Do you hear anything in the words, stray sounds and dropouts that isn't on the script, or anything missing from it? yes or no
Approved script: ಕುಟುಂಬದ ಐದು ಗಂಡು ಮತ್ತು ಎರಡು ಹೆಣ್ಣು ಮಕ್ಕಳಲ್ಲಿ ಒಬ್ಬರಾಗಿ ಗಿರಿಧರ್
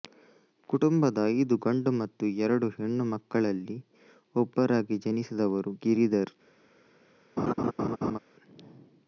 yes